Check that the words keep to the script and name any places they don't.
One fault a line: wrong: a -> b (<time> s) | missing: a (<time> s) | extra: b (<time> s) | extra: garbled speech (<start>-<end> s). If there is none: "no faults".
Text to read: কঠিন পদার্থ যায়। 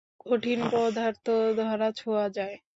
extra: ধরা-ছোঁয়া (1.6 s)